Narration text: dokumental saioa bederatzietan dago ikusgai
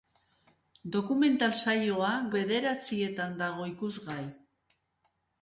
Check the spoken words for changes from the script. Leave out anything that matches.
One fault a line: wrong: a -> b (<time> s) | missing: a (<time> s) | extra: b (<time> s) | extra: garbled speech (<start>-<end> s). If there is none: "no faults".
no faults